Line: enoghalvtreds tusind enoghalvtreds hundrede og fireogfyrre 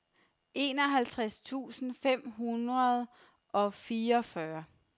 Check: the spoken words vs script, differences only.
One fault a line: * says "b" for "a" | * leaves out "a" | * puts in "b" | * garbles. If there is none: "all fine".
* says "fem" for "enoghalvtreds"